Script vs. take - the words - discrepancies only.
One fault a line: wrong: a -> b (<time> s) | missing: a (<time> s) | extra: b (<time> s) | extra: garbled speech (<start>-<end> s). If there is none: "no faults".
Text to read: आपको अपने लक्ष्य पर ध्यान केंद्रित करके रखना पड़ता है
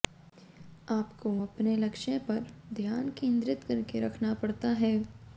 no faults